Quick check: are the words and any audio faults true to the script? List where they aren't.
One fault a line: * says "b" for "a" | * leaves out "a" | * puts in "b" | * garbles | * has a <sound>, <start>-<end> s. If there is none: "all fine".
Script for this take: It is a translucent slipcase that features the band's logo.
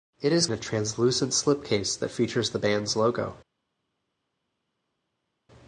all fine